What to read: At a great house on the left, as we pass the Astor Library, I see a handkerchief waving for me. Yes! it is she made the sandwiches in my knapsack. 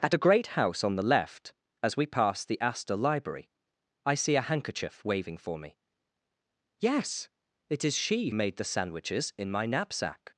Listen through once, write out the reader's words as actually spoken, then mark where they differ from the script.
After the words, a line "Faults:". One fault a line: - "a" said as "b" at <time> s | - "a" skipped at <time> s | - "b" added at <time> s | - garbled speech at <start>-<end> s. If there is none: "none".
At a great house on the left, as we pass the Astor Library, I see a handkerchief waving for me. Yes! it is she made the sandwiches in my knapsack.
Faults:
none